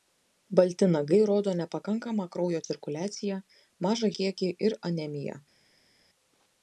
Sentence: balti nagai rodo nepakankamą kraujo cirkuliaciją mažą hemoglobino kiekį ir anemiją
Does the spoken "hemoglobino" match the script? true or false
false